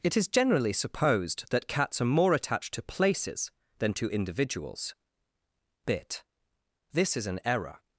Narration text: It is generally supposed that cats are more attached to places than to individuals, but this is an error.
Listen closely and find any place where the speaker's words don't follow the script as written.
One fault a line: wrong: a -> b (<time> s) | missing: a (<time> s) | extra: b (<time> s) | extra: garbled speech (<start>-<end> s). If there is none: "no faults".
wrong: but -> bit (5.8 s)